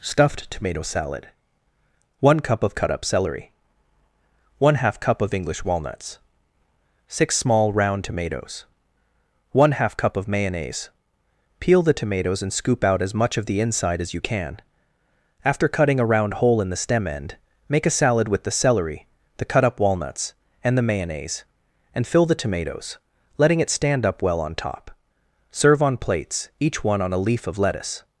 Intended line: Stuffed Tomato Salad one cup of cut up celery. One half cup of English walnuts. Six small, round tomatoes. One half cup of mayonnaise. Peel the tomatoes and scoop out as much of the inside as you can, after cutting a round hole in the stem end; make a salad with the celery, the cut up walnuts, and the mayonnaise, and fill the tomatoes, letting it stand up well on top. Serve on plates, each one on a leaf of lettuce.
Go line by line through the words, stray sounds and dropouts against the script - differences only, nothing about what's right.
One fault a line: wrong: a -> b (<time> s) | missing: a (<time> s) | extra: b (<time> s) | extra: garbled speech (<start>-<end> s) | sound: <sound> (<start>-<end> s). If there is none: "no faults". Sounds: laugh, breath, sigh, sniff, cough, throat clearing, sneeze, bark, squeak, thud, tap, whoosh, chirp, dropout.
no faults